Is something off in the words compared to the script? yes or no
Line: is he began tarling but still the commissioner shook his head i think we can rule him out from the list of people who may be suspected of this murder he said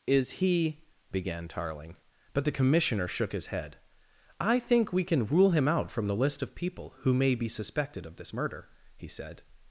yes